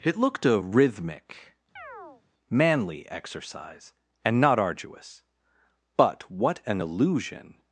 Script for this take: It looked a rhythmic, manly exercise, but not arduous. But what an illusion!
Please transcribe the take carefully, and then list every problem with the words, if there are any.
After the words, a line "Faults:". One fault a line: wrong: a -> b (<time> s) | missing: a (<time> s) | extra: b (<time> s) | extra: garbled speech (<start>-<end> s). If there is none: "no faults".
It looked a rhythmic, manly exercise, and not arduous. But what an illusion!
Faults:
wrong: but -> and (4.2 s)